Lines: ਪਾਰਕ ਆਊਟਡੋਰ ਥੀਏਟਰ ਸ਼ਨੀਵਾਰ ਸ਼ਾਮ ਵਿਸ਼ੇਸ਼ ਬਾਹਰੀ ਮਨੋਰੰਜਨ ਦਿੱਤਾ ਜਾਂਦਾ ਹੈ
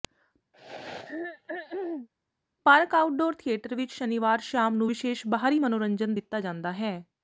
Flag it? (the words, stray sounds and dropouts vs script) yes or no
yes